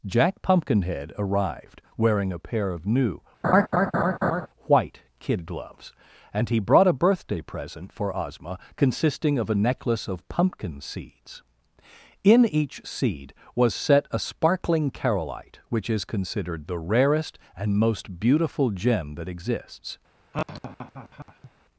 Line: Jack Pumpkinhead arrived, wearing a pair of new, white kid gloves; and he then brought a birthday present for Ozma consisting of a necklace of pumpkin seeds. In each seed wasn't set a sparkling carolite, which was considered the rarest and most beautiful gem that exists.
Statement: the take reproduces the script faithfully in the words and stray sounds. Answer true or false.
false